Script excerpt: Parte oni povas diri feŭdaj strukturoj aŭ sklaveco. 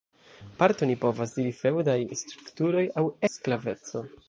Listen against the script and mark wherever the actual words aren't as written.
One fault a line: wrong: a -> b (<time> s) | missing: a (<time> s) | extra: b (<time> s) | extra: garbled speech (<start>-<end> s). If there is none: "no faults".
no faults